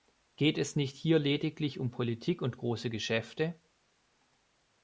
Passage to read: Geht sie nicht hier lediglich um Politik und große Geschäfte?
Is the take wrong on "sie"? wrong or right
wrong